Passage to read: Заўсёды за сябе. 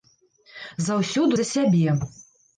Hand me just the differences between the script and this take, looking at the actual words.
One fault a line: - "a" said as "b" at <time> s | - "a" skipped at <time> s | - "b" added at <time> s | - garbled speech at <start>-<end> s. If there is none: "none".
none